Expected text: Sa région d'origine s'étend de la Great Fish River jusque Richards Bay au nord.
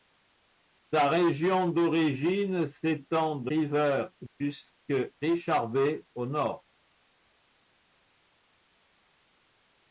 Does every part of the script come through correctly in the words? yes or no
no